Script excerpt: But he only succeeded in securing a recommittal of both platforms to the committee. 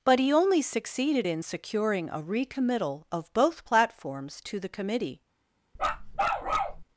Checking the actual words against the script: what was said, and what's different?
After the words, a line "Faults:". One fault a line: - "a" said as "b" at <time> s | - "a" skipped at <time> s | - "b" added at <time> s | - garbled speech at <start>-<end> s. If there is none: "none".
But he only succeeded in securing a recommittal of both platforms to the committee.
Faults:
none